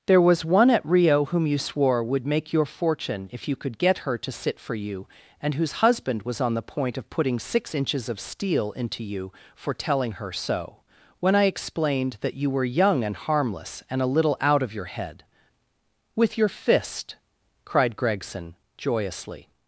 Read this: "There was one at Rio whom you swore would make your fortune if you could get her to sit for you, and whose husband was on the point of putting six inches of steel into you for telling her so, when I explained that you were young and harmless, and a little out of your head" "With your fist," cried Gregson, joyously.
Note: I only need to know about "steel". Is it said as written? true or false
true